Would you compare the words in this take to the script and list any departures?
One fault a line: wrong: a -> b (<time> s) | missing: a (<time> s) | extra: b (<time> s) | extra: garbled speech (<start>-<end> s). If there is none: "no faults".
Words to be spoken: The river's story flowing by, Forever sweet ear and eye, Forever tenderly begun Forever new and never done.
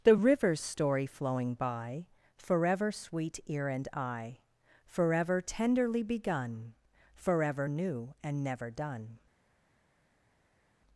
no faults